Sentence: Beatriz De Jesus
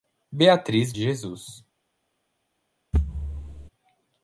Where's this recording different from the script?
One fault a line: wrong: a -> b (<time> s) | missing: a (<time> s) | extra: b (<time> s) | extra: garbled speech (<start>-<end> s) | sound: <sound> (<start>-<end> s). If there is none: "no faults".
sound: thud (2.9-3.7 s)